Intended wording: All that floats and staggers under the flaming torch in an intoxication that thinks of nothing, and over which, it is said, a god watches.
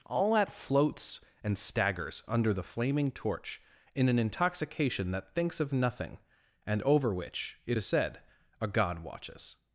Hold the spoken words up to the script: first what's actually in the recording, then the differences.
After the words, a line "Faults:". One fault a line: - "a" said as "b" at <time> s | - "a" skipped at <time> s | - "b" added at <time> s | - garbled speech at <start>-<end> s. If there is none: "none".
All that floats and staggers under the flaming torch in an intoxication that thinks of nothing, and over which, it is said, a god watches.
Faults:
none